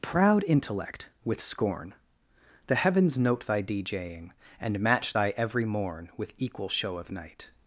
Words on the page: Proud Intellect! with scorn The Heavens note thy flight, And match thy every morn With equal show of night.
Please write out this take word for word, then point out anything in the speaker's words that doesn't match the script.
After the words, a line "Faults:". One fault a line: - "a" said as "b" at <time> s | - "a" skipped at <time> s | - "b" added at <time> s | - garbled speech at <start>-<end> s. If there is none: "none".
Proud Intellect! with scorn The Heavens note thy djing, And match thy every morn With equal show of night.
Faults:
- "flight" said as "djing" at 3.6 s